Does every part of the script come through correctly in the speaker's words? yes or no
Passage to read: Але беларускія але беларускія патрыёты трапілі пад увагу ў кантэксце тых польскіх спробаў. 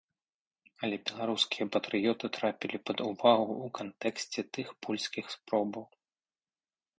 no